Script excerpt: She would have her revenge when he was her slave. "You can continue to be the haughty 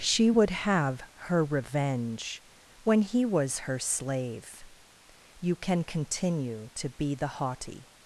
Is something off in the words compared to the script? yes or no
no